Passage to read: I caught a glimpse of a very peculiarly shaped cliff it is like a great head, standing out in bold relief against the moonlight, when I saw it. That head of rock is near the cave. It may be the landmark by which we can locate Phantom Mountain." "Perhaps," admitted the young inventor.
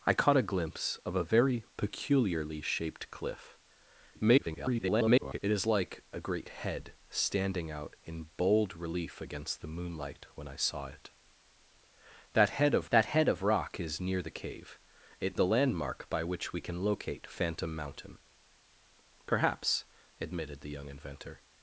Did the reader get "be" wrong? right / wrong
wrong